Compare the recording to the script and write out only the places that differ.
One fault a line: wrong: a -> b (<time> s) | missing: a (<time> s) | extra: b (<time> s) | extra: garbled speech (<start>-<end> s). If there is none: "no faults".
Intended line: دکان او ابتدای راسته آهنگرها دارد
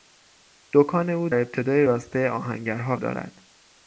no faults